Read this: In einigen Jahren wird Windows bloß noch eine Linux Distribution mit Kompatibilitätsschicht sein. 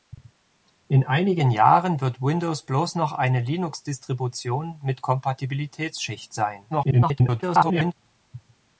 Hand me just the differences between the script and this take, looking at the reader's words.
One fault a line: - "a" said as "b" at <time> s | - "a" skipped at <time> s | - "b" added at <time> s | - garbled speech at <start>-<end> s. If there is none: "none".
- garbled speech at 6.7-7.9 s